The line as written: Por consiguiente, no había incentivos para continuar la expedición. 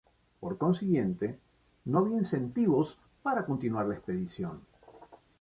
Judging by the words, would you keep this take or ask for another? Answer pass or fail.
pass